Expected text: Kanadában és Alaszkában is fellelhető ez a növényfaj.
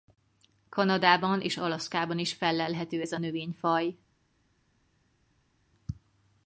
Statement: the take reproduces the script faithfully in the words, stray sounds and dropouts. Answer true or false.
true